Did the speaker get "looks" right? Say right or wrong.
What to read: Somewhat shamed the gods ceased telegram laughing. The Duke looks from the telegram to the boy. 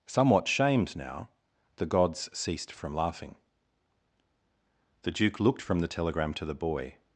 wrong